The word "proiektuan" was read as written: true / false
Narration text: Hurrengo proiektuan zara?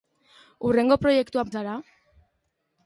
true